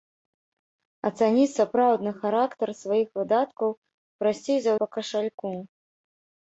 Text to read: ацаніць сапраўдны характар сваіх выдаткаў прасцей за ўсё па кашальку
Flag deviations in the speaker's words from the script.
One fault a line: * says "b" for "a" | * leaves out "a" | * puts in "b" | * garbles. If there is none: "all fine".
* leaves out "ўсё"